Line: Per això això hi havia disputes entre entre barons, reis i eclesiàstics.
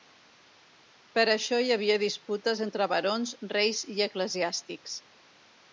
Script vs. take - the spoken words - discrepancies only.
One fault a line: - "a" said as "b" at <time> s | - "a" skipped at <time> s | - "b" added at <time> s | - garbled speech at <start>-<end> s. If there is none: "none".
- "això" skipped at 1.6 s
- "entre" skipped at 2.9 s